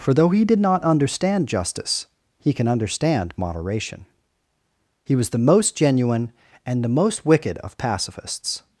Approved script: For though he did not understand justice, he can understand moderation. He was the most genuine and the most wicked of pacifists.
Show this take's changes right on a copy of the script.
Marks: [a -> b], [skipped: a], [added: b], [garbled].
For though he did not understand justice, he can understand moderation. He was the most genuine and the most wicked of pacifists.